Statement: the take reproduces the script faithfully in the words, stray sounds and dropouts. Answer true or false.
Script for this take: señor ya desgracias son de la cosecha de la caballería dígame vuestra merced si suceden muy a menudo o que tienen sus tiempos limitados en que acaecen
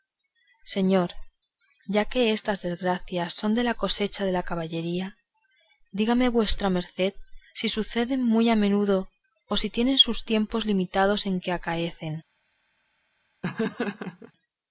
false